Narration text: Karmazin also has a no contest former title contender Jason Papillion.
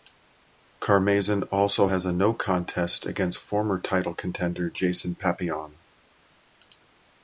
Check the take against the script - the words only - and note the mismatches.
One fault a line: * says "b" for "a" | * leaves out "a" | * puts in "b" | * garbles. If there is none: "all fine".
* puts in "against"